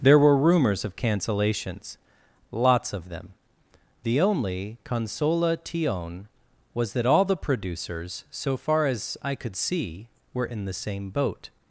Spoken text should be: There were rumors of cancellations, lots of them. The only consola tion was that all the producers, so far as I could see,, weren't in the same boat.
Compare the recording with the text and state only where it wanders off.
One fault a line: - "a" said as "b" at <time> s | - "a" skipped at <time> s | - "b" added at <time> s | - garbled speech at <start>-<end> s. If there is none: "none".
- "weren't" said as "were" at 10.3 s